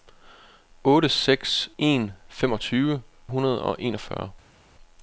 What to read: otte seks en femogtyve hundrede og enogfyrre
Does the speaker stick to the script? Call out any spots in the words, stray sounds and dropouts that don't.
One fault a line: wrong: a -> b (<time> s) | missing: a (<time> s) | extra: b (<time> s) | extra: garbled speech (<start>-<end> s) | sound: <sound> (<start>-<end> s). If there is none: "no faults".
no faults